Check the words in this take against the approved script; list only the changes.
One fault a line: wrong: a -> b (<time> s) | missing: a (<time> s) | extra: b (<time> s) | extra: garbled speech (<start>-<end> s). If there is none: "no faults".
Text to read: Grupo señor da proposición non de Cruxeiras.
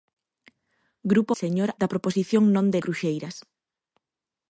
no faults